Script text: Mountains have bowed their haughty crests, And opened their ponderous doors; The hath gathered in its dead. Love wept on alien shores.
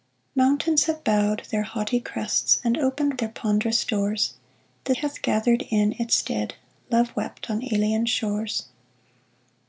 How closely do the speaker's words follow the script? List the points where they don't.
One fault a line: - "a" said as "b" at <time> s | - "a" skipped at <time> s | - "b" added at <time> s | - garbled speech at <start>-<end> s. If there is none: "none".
none